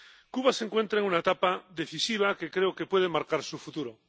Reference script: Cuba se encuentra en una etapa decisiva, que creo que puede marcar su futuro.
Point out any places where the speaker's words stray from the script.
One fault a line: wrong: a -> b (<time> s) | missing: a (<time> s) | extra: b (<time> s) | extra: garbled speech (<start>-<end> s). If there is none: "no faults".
no faults